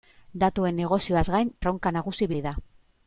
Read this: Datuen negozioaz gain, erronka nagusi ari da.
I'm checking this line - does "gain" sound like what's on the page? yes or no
yes